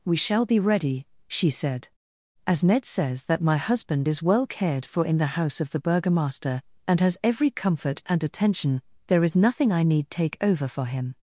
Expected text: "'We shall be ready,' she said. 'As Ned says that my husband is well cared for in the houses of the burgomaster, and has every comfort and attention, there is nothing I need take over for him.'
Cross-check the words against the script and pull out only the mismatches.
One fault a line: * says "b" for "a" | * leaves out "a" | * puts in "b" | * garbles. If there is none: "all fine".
* says "house" for "houses"